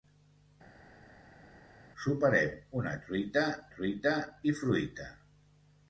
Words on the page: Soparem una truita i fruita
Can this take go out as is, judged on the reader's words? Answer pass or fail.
fail